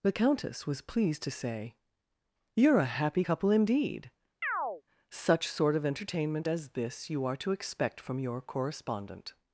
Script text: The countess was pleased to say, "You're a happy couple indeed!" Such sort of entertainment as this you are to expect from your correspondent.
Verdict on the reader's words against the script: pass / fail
pass